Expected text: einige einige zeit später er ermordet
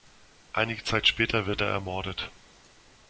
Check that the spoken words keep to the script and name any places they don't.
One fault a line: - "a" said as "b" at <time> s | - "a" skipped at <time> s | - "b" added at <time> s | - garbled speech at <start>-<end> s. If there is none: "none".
- "einige" skipped at 0.8 s
- "wird" added at 1.4 s